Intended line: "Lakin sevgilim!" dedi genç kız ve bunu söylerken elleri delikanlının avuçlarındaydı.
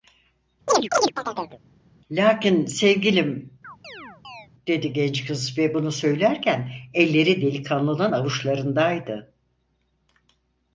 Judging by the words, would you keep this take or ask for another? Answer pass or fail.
pass